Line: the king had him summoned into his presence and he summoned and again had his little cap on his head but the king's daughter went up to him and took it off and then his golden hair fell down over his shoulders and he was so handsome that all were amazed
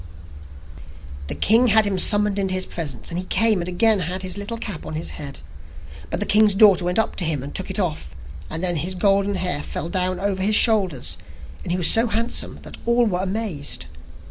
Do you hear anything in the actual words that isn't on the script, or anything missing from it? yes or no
yes